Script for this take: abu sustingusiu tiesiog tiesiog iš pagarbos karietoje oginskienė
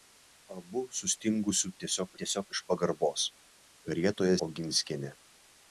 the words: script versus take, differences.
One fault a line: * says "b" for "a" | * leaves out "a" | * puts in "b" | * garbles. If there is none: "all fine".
all fine